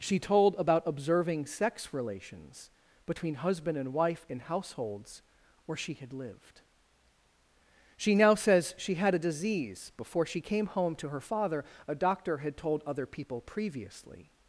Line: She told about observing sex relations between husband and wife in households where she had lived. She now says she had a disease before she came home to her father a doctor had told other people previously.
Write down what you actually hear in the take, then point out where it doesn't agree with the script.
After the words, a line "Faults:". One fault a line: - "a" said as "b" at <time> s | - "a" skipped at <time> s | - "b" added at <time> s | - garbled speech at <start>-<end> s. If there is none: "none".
She told about observing sex relations between husband and wife in households where she had lived. She now says she had a disease before she came home to her father a doctor had told other people previously.
Faults:
none